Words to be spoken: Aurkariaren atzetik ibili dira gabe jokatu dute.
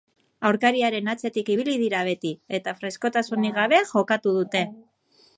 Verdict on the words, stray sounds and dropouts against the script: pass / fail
fail